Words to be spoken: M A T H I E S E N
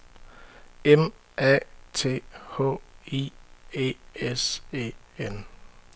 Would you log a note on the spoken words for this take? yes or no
no